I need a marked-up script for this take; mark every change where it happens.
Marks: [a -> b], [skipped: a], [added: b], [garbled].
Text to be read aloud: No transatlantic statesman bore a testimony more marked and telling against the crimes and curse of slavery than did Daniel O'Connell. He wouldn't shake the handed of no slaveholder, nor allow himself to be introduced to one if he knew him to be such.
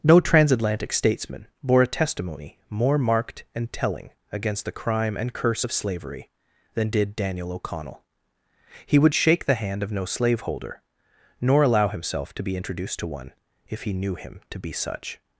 No transatlantic statesman bore a testimony more marked and telling against the [crimes -> crime] and curse of slavery than did Daniel O'Connell. He [wouldn't -> would] shake the [handed -> hand] of no slaveholder, nor allow himself to be introduced to one if he knew him to be such.